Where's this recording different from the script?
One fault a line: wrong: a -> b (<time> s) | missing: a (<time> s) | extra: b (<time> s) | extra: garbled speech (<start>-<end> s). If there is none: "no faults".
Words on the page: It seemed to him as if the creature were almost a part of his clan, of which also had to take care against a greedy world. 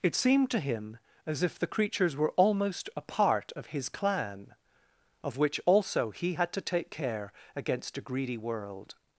wrong: creature -> creatures (1.7 s)
extra: he (6.1 s)